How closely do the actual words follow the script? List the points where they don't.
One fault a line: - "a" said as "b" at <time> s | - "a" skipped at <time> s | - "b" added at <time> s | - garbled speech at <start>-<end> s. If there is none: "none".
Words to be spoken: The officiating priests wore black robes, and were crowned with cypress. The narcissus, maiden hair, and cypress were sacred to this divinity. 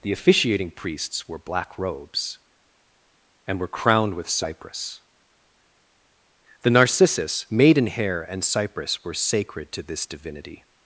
none